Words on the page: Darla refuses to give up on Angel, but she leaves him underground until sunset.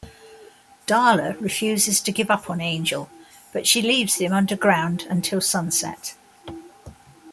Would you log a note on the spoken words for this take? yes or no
no